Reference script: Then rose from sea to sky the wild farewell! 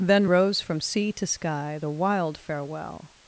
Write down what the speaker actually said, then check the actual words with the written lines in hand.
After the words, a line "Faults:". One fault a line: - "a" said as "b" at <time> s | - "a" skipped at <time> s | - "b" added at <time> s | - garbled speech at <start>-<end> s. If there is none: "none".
Then rose from sea to sky the wild farewell!
Faults:
none